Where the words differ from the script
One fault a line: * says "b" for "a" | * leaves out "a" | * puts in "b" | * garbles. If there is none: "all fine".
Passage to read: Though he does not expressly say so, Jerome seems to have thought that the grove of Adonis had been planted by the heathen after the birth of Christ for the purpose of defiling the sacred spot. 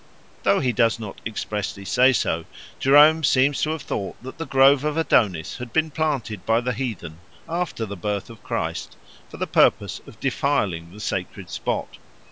all fine